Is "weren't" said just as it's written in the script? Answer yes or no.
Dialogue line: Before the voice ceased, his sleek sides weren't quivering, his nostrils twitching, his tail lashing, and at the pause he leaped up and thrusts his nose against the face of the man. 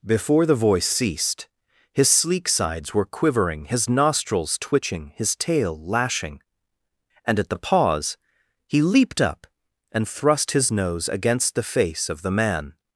no